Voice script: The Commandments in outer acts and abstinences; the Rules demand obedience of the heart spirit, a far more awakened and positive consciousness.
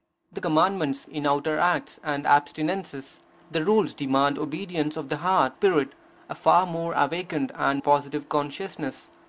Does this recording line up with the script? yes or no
yes